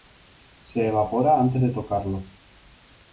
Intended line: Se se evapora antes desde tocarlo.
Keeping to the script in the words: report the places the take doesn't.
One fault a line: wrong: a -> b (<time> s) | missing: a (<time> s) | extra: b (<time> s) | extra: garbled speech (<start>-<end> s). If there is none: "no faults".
missing: se (0.8 s)
wrong: desde -> de (1.6 s)